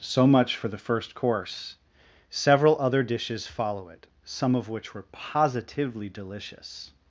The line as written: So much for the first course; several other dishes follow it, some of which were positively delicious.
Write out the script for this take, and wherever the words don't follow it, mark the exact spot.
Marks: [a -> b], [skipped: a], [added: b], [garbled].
So much for the first course; several other dishes follow it, some of which were positively delicious.